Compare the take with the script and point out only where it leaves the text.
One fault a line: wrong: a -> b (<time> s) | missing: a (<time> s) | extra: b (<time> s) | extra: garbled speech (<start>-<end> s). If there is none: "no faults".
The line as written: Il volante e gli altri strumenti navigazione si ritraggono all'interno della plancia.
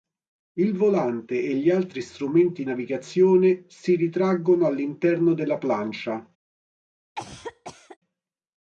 no faults